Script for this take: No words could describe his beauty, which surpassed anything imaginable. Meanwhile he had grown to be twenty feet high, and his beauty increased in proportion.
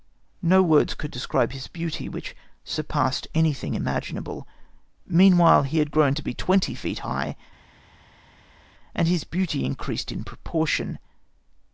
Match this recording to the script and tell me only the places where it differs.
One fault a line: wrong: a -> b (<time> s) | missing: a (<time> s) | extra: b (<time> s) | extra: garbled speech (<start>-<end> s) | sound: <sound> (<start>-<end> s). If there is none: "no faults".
no faults